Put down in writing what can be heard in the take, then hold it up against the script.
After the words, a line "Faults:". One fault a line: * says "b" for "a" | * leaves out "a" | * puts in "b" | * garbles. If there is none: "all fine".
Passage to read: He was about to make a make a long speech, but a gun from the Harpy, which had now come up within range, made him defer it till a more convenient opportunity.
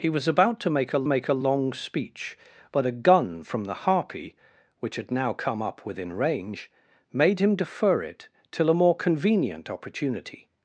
He was about to make a make a long speech, but a gun from the Harpy, which had now come up within range, made him defer it till a more convenient opportunity.
Faults:
all fine